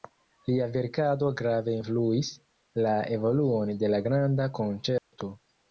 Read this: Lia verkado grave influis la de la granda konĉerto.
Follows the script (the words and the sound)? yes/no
no